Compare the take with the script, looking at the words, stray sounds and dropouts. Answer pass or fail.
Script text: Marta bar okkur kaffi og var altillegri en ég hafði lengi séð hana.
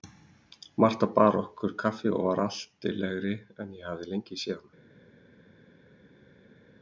pass